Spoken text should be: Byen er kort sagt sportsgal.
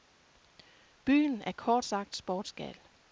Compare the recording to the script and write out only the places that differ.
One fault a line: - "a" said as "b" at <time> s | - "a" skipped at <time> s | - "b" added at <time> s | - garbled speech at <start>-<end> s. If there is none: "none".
none